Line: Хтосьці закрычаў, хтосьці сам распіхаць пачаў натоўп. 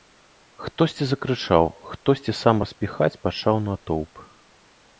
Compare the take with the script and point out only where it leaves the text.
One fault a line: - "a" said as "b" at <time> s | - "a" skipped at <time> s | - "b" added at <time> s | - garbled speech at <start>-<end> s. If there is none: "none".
none